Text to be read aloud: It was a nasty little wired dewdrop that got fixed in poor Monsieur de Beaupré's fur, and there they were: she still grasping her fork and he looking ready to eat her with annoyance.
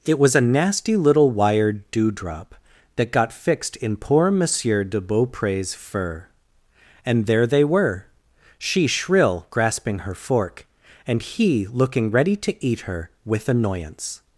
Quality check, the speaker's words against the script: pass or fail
fail